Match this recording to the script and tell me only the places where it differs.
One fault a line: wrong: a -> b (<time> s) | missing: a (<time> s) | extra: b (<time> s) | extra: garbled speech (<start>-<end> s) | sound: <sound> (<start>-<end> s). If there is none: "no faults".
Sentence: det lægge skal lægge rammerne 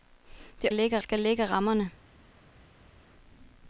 no faults